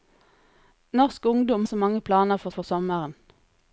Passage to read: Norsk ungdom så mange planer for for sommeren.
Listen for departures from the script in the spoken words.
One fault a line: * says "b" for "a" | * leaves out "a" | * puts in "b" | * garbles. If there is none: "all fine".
all fine